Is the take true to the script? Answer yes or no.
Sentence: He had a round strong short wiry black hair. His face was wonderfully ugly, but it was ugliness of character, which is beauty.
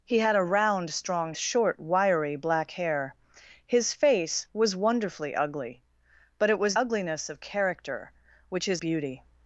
yes